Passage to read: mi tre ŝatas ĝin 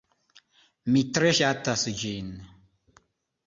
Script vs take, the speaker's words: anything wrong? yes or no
no